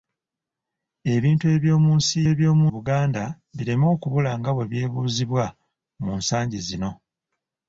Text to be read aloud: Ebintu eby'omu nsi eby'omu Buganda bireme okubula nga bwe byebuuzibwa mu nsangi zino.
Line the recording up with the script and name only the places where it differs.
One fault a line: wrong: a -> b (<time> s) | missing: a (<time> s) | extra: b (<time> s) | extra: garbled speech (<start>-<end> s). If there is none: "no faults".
no faults